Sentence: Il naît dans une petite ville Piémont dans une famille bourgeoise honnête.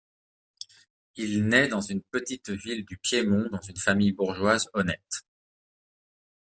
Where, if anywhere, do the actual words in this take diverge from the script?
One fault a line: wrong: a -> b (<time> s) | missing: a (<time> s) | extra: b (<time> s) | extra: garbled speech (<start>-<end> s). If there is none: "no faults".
extra: du (2.9 s)